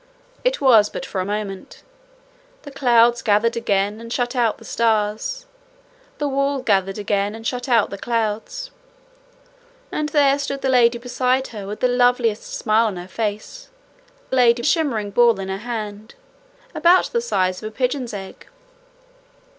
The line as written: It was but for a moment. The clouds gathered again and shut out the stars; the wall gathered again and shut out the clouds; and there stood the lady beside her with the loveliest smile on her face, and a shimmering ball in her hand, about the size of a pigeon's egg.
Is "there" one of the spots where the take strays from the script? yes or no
no